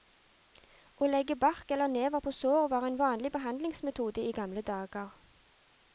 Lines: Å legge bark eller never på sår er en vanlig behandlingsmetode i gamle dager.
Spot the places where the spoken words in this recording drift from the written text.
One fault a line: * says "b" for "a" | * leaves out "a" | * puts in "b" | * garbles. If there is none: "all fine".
* says "var" for "er"